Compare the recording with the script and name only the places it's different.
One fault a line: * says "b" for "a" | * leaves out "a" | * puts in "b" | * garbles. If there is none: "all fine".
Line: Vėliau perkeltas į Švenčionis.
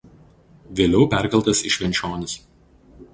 all fine